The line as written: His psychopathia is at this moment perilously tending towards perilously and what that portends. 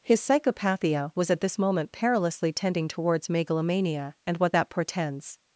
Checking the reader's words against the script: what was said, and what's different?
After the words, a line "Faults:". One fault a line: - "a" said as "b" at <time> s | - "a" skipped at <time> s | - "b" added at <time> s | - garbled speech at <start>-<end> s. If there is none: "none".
His psychopathia was at this moment perilously tending towards megalomania and what that portends.
Faults:
- "is" said as "was" at 1.1 s
- "perilously" said as "megalomania" at 3.3 s